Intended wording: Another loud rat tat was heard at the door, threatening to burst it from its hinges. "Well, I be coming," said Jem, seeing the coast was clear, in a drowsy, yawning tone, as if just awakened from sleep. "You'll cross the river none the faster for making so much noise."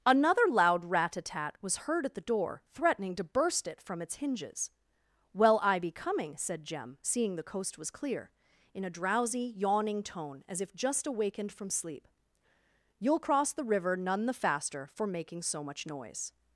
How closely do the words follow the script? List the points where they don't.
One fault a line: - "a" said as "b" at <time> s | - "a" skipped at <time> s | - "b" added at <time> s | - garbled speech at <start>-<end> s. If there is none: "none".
- "a" added at 1.1 s